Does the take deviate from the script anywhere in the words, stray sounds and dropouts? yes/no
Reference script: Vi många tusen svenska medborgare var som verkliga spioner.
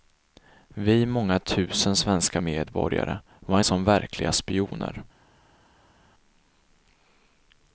no